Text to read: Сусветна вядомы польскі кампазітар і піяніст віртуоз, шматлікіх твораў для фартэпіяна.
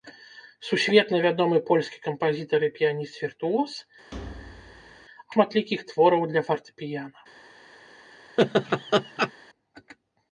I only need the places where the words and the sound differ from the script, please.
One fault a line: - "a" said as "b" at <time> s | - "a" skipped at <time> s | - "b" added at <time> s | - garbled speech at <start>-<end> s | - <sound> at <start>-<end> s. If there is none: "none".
- thud at 4.1-5.1 s
- laugh at 8.4-9.3 s